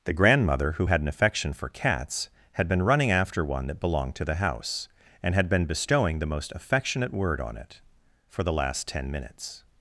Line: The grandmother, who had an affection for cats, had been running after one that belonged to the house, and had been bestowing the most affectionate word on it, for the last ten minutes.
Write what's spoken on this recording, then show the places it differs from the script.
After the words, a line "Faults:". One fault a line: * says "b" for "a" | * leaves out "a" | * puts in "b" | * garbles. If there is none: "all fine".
The grandmother, who had an affection for cats, had been running after one that belonged to the house, and had been bestowing the most affectionate word on it, for the last ten minutes.
Faults:
all fine